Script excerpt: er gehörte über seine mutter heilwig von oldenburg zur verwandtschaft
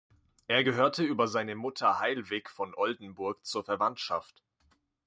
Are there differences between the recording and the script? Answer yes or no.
no